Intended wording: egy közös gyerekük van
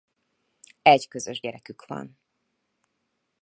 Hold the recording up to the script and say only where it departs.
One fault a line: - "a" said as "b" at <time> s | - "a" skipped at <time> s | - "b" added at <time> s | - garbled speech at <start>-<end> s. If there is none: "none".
none